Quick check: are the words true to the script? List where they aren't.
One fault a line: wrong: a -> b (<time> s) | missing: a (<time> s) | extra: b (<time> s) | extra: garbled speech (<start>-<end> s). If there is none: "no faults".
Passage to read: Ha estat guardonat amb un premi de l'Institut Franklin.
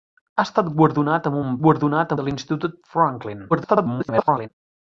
wrong: premi -> guardonat (1.6 s)
extra: garbled speech (3.5-4.5 s)